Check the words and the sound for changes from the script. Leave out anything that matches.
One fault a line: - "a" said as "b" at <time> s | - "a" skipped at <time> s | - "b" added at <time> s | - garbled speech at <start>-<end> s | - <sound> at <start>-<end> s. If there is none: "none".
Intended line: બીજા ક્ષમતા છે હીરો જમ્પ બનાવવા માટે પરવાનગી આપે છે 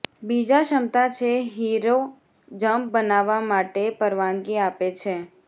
none